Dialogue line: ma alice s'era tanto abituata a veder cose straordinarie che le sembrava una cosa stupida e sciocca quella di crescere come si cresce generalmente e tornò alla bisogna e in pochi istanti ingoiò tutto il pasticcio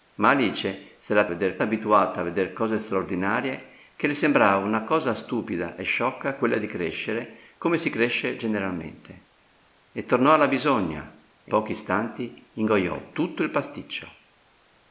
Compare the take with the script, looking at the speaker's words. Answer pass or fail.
fail